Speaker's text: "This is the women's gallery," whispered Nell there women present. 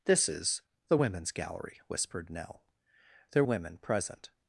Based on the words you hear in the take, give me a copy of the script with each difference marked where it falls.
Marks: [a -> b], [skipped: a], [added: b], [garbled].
"This is the women's gallery," whispered Nell there women present.